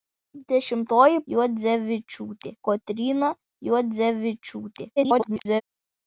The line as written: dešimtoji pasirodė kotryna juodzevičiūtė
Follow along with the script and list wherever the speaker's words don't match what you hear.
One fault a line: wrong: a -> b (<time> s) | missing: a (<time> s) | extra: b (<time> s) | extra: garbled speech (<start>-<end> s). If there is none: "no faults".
wrong: pasirodė -> juodzevičiūtė (1.4 s)
extra: garbled speech (5.0-5.6 s)